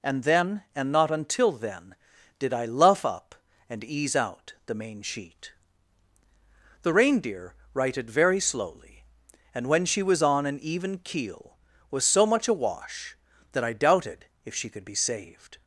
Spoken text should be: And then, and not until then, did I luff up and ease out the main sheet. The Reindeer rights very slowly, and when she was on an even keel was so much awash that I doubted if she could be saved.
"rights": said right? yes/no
no